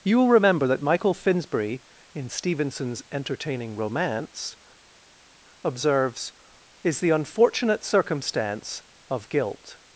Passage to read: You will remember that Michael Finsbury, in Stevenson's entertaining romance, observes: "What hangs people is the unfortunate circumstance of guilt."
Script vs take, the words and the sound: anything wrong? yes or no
yes